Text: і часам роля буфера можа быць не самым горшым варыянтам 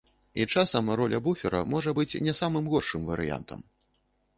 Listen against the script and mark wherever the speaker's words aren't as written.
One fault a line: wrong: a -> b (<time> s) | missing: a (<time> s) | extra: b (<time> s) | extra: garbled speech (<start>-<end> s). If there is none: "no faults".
no faults